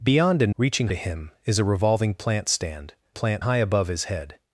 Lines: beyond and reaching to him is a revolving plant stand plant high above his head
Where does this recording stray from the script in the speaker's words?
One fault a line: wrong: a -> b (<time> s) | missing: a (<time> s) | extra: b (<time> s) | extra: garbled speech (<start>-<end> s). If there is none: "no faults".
no faults